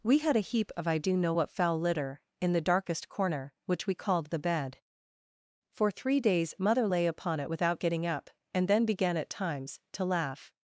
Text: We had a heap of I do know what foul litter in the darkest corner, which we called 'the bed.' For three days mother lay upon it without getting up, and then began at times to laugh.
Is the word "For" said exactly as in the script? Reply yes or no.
yes